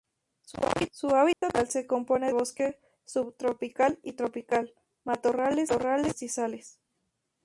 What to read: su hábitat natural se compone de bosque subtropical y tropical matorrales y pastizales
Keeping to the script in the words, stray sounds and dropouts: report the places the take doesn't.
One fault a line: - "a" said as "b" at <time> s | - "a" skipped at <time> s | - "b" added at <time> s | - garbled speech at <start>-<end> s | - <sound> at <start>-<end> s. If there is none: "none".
- dropout at 1.3-1.4 s
- "de" skipped at 2.3 s